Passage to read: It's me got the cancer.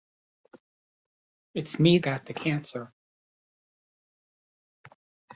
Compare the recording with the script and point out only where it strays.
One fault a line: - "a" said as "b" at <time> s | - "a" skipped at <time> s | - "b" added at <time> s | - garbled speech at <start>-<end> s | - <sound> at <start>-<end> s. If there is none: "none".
none